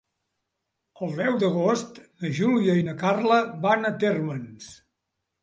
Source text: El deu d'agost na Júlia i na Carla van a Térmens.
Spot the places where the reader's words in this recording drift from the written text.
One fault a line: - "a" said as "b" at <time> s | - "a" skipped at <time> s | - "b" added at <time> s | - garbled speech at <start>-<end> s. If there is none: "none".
none